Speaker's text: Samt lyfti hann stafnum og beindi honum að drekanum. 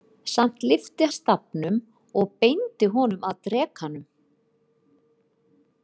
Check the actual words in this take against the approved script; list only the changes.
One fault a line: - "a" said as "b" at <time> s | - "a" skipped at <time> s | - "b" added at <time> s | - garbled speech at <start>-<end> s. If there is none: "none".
- "hann" skipped at 1.1 s